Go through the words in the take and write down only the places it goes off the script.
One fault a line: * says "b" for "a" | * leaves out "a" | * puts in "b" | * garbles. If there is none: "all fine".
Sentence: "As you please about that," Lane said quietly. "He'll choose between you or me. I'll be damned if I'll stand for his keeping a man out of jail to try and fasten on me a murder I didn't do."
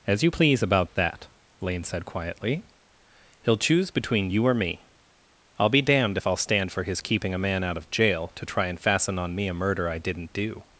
all fine